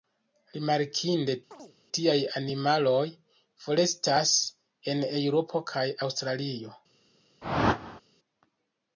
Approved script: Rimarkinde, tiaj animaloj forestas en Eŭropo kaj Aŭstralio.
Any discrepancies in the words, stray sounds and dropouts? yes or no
yes